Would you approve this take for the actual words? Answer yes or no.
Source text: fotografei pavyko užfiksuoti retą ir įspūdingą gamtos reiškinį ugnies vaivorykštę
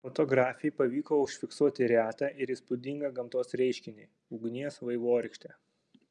yes